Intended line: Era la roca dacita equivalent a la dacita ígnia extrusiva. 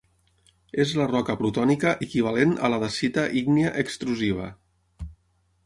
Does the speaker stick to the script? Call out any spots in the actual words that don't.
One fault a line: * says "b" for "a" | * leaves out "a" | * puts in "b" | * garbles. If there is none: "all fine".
* says "És" for "Era"
* says "plutònica" for "dacita"